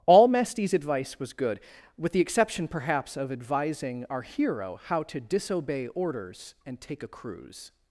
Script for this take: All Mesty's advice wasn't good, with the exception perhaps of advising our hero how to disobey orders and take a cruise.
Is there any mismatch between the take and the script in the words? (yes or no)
yes